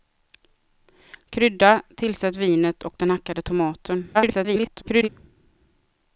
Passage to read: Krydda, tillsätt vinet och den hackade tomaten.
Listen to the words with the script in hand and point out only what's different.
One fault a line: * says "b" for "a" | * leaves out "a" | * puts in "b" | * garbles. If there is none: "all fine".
* garbles